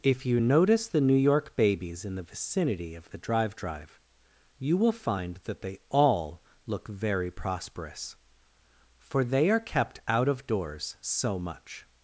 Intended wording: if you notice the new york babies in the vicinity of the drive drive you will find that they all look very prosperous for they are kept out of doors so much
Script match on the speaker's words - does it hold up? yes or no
yes